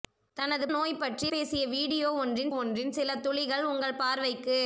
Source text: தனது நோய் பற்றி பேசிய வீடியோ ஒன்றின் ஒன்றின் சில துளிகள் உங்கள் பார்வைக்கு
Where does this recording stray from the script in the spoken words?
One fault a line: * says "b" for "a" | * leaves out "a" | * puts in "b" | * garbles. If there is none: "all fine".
all fine